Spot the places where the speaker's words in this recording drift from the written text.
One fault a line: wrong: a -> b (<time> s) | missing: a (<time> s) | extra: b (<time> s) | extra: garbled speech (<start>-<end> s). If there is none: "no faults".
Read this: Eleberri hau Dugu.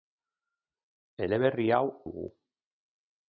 no faults